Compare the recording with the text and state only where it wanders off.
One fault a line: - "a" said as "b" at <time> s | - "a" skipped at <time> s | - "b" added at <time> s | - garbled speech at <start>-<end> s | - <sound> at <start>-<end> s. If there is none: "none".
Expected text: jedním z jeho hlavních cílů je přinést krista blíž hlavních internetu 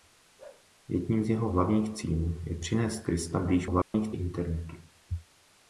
- bark at 0.4-0.7 s
- dropout at 3.8-3.9 s